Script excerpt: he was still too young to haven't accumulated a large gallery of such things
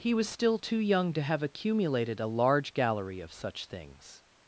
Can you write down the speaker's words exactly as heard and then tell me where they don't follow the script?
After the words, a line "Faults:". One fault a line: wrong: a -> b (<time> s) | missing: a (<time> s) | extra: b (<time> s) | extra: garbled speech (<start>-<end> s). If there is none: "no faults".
he was still too young to have accumulated a large gallery of such things
Faults:
wrong: haven't -> have (1.2 s)